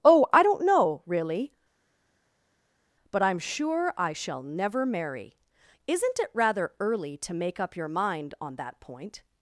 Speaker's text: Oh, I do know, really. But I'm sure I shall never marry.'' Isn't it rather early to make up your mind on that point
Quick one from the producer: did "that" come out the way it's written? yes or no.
yes